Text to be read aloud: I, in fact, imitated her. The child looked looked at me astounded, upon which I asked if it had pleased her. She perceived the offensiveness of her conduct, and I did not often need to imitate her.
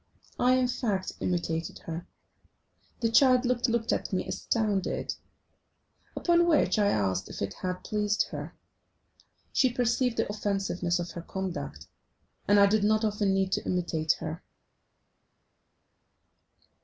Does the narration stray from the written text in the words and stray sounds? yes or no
no